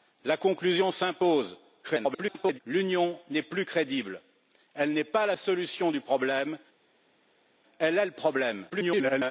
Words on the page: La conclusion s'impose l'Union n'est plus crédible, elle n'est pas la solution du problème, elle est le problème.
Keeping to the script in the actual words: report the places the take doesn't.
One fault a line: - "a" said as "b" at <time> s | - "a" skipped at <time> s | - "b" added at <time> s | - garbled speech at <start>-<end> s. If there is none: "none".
- garbled speech at 1.8-2.6 s
- garbled speech at 8.7-9.3 s